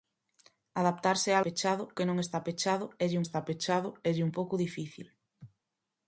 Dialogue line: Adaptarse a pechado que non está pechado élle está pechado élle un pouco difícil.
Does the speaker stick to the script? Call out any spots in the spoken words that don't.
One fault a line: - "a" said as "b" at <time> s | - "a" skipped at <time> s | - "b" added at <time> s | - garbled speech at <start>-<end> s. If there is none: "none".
none